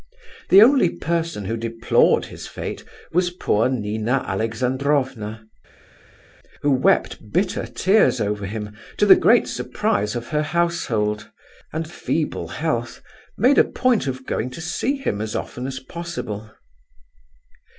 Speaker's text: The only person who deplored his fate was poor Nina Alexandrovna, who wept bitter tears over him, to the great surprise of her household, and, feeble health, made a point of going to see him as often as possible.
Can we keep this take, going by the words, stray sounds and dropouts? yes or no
yes